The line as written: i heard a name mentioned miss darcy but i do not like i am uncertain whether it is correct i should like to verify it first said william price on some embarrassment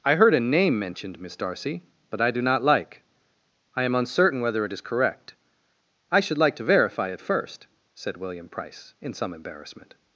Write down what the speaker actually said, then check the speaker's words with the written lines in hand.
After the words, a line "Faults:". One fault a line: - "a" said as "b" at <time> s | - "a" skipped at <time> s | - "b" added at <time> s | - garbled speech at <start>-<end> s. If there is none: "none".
i heard a name mentioned miss darcy but i do not like i am uncertain whether it is correct i should like to verify it first said william price in some embarrassment
Faults:
- "on" said as "in" at 9.0 s